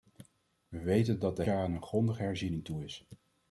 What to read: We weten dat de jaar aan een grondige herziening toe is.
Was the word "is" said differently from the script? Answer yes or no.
no